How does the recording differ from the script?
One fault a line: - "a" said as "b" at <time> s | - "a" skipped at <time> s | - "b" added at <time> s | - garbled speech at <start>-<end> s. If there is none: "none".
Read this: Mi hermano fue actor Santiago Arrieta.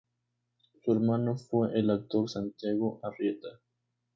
- "Mi" said as "Su" at 0.8 s
- "el" added at 1.8 s